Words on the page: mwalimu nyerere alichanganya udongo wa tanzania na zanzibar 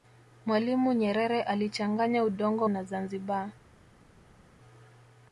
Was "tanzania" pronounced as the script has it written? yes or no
no